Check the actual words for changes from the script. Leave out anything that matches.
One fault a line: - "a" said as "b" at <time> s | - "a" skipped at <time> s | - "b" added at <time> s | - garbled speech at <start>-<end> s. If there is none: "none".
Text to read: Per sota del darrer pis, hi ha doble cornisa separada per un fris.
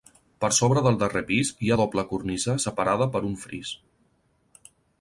- "sota" said as "sobre" at 0.6 s